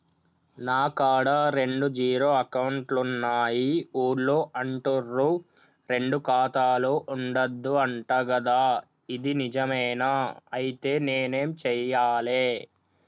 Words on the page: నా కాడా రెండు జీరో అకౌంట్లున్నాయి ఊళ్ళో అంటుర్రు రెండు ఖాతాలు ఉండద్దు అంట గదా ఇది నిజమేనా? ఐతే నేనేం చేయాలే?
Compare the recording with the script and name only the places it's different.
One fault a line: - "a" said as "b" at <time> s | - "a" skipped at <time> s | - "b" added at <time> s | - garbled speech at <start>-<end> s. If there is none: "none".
none